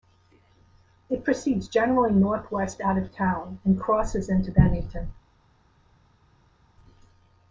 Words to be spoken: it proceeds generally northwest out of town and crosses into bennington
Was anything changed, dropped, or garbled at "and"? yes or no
no